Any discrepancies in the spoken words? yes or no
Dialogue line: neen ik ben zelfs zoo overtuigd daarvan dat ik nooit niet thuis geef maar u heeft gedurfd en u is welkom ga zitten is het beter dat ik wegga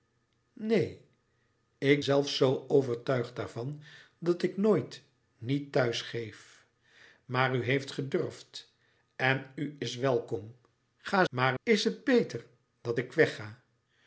yes